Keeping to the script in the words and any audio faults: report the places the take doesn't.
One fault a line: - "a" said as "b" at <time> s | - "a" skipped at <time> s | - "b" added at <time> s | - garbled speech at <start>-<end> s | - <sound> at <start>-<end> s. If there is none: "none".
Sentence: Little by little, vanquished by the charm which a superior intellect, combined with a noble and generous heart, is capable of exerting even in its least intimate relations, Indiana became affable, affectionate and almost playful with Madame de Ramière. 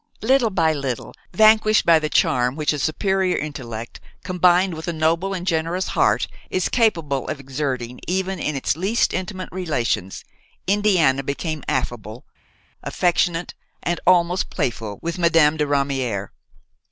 none